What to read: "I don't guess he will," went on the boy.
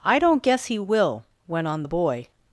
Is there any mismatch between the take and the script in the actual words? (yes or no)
no